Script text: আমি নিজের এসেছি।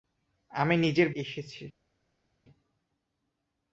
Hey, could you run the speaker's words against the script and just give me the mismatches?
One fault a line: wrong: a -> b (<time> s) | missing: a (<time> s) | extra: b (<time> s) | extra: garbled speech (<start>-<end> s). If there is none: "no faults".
no faults